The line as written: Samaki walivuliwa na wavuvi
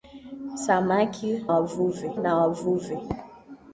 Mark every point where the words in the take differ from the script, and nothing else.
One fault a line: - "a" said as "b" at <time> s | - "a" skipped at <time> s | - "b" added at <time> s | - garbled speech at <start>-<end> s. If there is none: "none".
- "walivuliwa" said as "wavuvi" at 1.5 s